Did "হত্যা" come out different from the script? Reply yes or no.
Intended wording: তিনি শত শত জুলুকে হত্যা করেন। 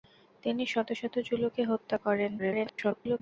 no